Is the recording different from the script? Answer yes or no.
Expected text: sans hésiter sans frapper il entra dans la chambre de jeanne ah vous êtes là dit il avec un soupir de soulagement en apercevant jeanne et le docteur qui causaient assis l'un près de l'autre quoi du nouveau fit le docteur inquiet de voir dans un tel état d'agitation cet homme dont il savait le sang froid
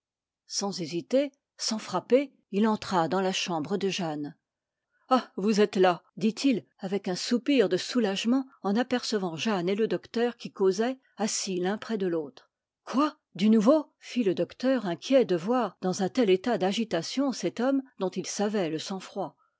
no